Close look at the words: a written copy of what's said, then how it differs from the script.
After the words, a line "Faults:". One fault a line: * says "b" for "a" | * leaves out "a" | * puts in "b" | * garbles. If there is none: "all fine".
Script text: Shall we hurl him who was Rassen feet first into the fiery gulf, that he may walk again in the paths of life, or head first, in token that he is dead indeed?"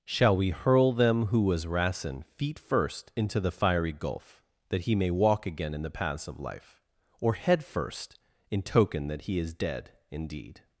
Shall we hurl them who was Rassen feet first into the fiery gulf, that he may walk again in the paths of life, or head first, in token that he is dead indeed?"
Faults:
* says "them" for "him"